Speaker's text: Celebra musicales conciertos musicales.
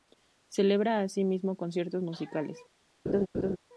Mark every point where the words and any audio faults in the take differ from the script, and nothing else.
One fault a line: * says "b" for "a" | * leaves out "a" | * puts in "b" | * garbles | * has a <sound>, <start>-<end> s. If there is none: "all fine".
* says "asimismo" for "musicales"
* has a laugh, 3.1-3.6 s